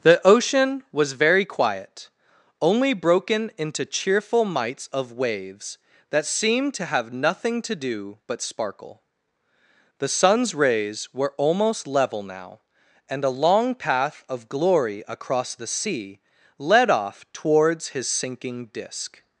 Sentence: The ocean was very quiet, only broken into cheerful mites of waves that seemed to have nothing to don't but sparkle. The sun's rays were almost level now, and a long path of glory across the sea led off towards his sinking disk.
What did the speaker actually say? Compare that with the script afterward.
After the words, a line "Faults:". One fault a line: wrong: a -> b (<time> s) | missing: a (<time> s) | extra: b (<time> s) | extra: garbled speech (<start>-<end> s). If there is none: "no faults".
The ocean was very quiet, only broken into cheerful mites of waves that seemed to have nothing to do but sparkle. The sun's rays were almost level now, and a long path of glory across the sea led off towards his sinking disk.
Faults:
wrong: don't -> do (7.8 s)